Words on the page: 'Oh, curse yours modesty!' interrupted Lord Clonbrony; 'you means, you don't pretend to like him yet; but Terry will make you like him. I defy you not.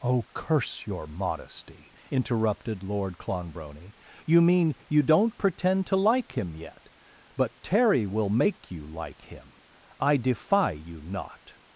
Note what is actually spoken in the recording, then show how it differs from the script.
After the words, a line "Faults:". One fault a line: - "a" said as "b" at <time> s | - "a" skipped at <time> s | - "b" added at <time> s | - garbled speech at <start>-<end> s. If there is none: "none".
'Oh, curse your modesty!' interrupted Lord Clonbrony; 'you mean, you don't pretend to like him yet; but Terry will make you like him. I defy you not.
Faults:
- "yours" said as "your" at 0.9 s
- "means" said as "mean" at 4.4 s